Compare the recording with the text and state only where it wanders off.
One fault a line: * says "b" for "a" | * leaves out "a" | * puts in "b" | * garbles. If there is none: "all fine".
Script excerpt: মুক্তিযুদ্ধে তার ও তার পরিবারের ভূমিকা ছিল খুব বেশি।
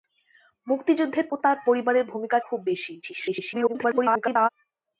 * leaves out "তার"
* leaves out "ছিল"
* garbles